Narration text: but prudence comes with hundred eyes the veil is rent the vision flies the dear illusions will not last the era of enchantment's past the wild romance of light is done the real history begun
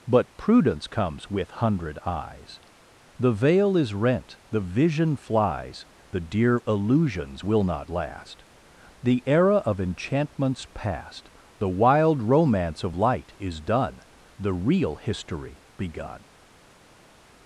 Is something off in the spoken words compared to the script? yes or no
no